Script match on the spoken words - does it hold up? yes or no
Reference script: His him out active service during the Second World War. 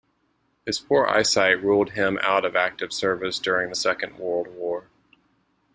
no